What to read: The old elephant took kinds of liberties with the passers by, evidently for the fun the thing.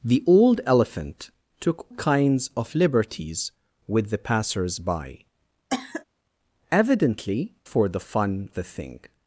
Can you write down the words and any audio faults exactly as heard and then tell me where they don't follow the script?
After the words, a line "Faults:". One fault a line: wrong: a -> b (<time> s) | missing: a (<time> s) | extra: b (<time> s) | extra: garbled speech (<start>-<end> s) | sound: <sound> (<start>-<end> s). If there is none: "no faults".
The old elephant took kinds of liberties with the passers by, evidently for the fun the thing.
Faults:
sound: cough (5.7-6.0 s)